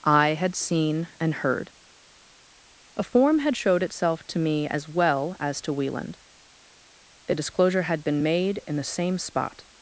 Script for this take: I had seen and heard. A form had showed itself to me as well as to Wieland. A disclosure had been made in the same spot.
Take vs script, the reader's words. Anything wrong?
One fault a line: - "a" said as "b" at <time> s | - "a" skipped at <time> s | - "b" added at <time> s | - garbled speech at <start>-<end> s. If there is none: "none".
none